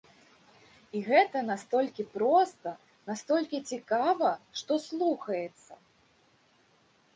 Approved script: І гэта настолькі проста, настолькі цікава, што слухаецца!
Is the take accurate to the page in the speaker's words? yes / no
yes